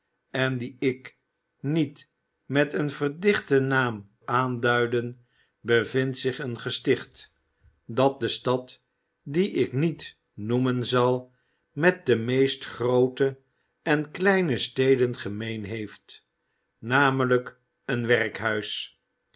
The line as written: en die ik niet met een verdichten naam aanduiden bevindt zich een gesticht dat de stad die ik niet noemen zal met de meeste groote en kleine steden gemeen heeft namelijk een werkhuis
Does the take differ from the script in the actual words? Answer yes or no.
no